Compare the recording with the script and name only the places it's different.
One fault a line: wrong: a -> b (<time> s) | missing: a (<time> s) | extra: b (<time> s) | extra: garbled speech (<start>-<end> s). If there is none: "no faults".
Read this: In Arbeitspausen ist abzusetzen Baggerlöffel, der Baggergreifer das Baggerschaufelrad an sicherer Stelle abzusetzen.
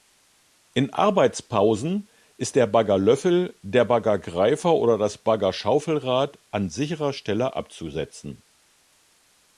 wrong: abzusetzen -> der (2.5 s)
extra: oder (4.7 s)